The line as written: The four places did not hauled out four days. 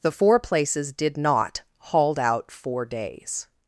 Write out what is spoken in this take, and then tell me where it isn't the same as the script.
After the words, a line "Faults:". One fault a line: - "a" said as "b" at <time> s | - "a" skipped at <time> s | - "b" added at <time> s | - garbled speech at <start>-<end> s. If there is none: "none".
The four places did not hauled out four days.
Faults:
none